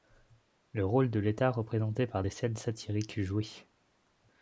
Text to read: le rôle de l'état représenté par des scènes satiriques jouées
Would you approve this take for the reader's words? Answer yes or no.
yes